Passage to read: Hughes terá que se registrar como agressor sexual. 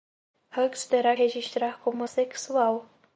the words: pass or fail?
fail